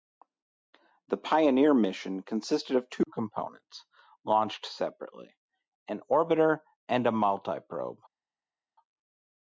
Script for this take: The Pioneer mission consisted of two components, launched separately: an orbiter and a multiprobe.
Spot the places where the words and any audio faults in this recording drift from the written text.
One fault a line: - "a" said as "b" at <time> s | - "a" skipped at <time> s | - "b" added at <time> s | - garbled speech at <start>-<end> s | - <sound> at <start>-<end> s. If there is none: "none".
none